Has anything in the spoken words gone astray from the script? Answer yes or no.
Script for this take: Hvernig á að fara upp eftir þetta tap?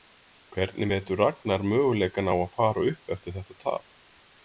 yes